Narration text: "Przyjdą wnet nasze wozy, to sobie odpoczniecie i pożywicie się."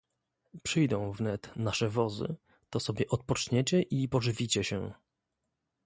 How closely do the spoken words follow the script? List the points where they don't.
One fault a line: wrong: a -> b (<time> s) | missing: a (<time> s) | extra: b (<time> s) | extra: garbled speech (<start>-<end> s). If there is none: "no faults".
no faults